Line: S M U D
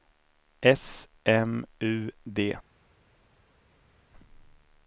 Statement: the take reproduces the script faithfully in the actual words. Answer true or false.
true